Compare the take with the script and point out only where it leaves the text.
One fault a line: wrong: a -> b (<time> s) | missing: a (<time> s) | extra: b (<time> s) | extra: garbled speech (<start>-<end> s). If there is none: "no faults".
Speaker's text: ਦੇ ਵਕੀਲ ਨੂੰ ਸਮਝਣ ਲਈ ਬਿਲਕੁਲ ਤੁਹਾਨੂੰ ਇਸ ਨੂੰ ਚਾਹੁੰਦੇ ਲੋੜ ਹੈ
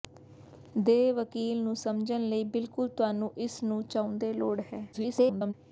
extra: garbled speech (4.9-5.5 s)